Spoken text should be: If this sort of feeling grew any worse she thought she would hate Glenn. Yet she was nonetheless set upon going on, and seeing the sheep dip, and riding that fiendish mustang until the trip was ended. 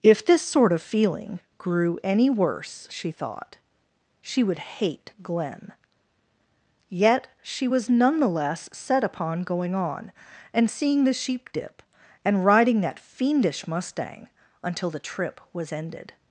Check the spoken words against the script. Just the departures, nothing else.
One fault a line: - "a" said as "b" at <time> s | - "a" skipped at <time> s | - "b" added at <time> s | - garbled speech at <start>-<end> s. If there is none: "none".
none